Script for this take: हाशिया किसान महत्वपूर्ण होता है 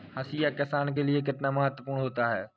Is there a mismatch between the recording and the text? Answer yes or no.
yes